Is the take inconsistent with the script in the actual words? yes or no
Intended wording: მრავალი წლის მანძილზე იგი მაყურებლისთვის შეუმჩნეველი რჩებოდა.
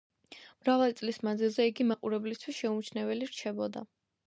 no